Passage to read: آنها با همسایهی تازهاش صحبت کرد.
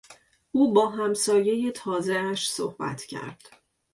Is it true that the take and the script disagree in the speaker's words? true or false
true